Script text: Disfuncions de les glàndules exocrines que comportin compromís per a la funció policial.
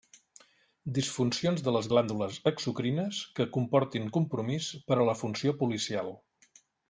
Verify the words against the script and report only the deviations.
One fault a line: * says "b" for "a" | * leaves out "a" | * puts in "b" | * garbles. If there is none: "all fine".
all fine